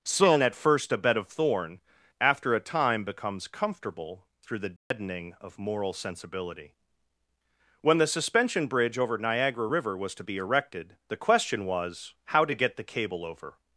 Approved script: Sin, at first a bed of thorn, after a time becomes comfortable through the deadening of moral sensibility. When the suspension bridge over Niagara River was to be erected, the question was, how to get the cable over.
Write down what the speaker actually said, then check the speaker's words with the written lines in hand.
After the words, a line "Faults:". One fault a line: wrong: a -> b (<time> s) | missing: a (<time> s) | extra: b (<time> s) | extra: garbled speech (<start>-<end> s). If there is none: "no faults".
Sin, at first a bed of thorn, after a time becomes comfortable through the deadening of moral sensibility. When the suspension bridge over Niagara River was to be erected, the question was, how to get the cable over.
Faults:
no faults